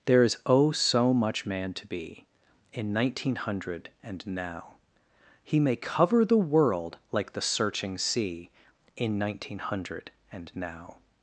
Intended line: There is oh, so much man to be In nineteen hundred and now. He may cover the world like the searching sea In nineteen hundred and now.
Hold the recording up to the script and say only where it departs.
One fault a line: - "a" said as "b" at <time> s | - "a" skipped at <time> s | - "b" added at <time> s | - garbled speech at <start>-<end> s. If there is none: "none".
none